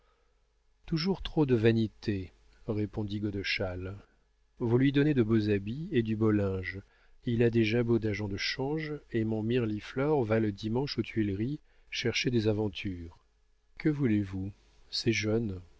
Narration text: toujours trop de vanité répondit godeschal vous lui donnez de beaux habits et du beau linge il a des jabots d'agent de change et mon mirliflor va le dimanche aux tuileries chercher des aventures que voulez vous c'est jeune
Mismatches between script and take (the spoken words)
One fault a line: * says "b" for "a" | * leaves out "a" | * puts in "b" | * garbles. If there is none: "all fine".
all fine